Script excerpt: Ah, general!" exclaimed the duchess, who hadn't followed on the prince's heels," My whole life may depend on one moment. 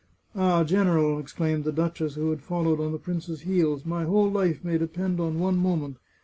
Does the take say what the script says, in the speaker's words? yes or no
no